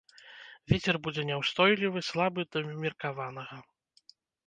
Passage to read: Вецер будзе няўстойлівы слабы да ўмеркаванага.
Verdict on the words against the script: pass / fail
pass